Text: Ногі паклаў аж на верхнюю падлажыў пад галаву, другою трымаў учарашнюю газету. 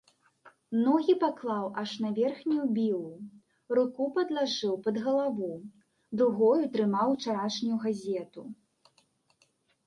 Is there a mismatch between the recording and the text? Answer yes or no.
yes